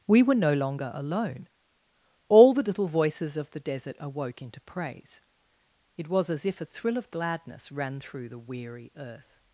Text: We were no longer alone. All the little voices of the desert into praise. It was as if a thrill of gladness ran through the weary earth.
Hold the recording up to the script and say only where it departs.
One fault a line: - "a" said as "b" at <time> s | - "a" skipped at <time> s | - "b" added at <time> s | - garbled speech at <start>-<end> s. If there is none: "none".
- "awoke" added at 4.0 s